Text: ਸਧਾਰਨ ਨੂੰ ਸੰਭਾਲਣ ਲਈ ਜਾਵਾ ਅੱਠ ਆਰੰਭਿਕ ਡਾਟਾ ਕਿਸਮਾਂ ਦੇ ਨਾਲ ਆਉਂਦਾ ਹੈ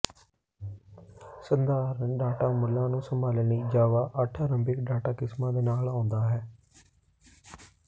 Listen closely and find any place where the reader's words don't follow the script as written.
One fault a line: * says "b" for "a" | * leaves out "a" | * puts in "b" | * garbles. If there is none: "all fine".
* puts in "ਡਾਟਾ ਮੁੱਲਾਂ"